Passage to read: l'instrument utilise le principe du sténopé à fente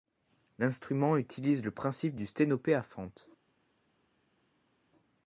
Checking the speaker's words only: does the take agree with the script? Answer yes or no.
yes